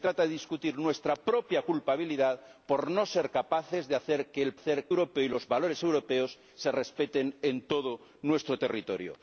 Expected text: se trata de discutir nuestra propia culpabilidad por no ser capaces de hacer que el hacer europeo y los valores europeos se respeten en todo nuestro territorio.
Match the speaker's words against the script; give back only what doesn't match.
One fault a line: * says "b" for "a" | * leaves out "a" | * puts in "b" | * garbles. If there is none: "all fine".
all fine